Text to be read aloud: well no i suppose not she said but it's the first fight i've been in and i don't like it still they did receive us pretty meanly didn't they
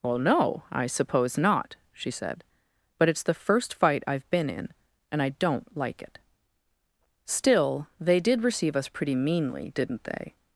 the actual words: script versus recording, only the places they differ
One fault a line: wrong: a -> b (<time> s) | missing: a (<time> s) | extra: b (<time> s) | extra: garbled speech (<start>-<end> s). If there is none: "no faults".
no faults